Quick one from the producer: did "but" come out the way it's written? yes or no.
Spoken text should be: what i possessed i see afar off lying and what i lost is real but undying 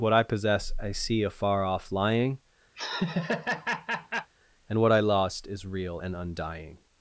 no